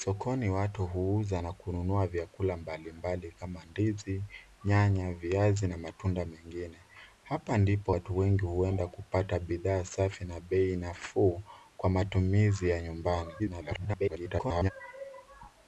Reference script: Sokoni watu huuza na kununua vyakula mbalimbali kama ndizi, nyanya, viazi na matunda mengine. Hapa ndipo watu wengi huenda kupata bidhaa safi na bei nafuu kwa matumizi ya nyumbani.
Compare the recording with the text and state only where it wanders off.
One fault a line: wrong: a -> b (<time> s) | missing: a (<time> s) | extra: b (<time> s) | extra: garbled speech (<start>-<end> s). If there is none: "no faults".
extra: garbled speech (13.4-14.7 s)